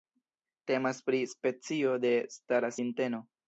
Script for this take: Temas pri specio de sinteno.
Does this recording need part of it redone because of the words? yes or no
yes